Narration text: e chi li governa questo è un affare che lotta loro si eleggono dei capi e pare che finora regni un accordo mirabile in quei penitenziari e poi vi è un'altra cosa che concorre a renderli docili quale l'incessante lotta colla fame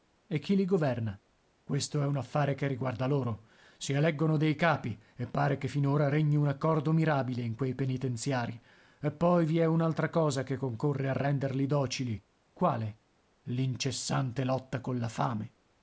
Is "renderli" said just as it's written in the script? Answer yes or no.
yes